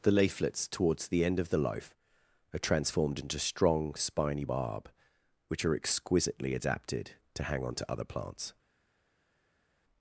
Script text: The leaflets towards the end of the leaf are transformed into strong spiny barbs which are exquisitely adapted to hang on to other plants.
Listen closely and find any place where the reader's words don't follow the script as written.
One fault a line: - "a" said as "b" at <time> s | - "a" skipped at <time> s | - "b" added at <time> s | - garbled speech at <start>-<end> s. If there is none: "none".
- "leaf" said as "loaf" at 1.6 s
- "barbs" said as "barb" at 4.4 s